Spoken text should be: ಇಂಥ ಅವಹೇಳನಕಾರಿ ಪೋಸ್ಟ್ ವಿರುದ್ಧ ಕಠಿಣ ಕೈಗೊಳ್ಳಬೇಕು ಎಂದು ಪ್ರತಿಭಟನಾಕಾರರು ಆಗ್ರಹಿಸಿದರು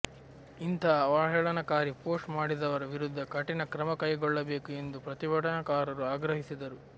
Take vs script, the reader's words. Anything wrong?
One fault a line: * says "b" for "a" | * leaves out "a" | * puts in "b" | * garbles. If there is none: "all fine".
* puts in "ಮಾಡಿದವರ"
* puts in "ಕ್ರಮ"